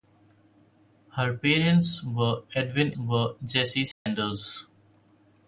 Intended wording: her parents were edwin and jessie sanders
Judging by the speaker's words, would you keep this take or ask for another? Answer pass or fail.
fail